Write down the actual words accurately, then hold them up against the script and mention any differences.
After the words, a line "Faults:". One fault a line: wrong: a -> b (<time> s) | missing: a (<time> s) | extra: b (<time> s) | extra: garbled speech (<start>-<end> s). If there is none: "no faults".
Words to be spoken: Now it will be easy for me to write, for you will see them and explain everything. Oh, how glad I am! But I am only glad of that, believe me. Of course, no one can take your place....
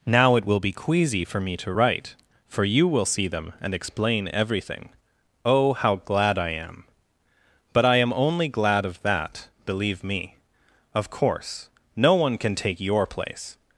Now it will be queasy for me to write, for you will see them and explain everything. Oh, how glad I am! But I am only glad of that, believe me. Of course, no one can take your place....
Faults:
wrong: easy -> queasy (0.7 s)